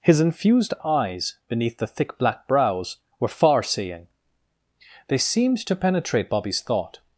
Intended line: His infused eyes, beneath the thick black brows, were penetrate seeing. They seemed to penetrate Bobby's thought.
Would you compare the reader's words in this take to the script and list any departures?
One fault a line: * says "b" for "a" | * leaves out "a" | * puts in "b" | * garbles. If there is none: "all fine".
* says "far" for "penetrate"